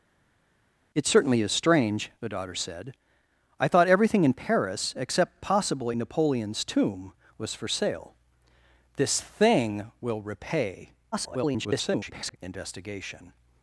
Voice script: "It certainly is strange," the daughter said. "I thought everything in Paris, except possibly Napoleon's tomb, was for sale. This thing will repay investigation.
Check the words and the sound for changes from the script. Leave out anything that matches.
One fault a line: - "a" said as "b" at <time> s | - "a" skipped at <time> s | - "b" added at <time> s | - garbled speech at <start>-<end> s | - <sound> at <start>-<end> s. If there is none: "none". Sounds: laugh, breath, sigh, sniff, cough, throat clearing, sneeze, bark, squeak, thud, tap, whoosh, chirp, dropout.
- garbled speech at 11.1-12.4 s